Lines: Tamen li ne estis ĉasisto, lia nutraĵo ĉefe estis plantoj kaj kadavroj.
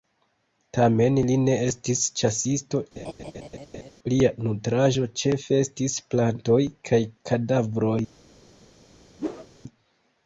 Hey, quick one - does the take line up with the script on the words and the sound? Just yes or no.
no